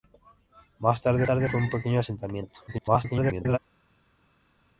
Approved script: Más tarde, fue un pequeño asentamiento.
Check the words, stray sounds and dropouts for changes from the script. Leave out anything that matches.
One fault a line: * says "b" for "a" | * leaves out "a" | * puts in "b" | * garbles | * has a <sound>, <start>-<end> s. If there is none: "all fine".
* puts in "tarde"
* garbles